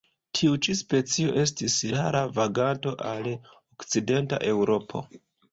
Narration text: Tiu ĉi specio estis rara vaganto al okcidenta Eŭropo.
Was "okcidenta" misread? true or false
false